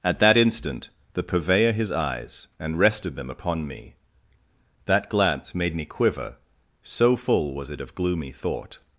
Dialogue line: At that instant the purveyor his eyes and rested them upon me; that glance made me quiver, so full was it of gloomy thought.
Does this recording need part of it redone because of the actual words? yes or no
no